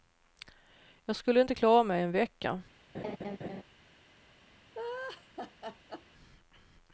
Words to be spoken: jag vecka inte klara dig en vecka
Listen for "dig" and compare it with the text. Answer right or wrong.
wrong